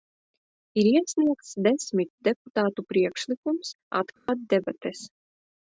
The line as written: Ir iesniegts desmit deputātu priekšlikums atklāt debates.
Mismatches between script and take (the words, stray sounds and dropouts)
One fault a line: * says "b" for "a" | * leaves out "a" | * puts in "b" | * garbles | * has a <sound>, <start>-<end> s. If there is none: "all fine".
* has a dropout, 4.2-4.3 s